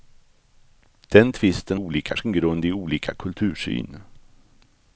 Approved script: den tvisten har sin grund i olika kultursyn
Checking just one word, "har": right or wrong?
wrong